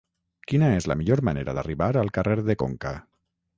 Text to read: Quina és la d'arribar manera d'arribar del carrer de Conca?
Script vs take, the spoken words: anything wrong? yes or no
yes